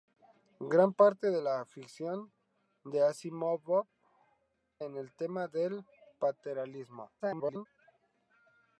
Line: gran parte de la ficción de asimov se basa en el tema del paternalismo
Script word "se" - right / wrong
wrong